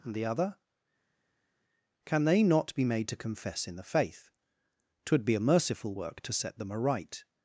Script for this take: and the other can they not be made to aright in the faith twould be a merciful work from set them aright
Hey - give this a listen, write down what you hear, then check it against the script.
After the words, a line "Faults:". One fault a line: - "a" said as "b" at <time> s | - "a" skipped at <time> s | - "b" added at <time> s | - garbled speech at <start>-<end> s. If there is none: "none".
and the other can they not be made to confess in the faith twould be a merciful work to set them aright
Faults:
- "aright" said as "confess" at 3.2 s
- "from" said as "to" at 6.2 s